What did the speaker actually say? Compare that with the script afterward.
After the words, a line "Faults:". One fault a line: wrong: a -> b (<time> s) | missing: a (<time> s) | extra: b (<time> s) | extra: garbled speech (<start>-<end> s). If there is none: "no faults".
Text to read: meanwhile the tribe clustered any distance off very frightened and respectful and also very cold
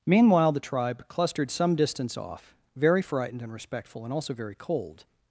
meanwhile the tribe clustered some distance off very frightened and respectful and also very cold
Faults:
wrong: any -> some (1.5 s)